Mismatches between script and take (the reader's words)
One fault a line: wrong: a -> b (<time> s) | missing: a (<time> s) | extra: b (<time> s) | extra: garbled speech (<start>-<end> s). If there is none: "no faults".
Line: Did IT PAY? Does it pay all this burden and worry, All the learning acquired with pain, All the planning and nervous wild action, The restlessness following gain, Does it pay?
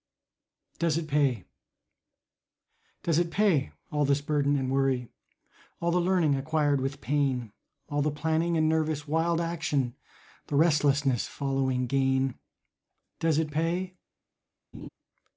wrong: Did -> DOES (0.8 s)